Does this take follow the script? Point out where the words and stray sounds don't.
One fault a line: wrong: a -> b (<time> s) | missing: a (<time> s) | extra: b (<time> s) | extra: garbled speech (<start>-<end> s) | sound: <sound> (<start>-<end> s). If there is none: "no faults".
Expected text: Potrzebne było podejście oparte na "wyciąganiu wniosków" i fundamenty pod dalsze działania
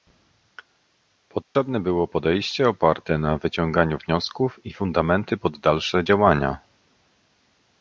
sound: dropout (1.4-1.6 s)